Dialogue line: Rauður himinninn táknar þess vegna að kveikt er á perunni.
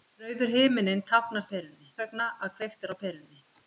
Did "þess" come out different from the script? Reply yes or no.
yes